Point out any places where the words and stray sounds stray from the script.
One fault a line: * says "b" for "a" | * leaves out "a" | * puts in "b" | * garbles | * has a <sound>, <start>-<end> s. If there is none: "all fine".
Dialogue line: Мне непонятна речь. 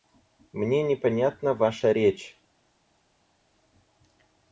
* puts in "ваша"